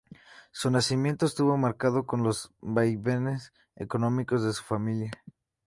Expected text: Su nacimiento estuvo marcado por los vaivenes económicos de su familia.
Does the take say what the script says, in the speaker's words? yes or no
yes